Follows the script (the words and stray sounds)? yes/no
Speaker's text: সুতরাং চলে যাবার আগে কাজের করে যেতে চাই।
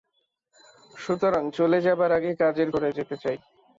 yes